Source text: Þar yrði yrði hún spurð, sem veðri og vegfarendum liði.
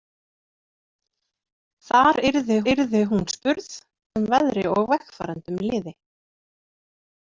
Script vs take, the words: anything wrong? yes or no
no